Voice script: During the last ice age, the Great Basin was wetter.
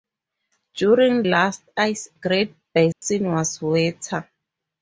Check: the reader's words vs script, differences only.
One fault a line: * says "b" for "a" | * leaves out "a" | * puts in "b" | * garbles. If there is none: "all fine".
* leaves out "the"
* leaves out "age the"